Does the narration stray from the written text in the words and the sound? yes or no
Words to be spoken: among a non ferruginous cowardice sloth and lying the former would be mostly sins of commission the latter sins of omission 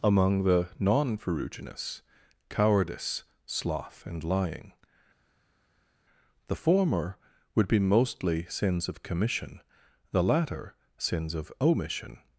yes